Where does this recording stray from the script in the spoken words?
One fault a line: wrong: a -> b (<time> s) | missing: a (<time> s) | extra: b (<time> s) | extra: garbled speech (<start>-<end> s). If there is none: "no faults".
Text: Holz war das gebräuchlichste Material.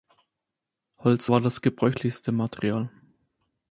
no faults